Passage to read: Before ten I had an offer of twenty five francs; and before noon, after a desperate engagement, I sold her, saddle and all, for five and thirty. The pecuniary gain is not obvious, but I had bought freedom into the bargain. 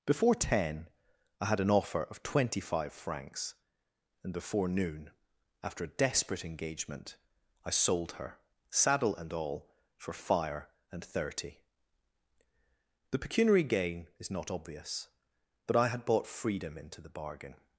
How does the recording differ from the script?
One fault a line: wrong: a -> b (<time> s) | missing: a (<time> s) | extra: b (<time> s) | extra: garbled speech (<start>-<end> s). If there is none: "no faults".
wrong: five -> fire (10.1 s)